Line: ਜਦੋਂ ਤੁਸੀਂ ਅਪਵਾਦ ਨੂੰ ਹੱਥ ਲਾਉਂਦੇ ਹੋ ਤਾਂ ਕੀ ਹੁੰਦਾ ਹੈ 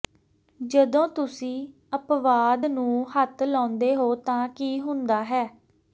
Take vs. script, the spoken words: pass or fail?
pass